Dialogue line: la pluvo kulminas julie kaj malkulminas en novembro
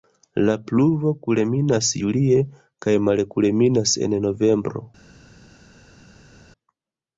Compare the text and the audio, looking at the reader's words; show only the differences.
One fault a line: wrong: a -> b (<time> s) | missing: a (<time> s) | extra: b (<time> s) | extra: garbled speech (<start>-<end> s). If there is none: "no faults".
no faults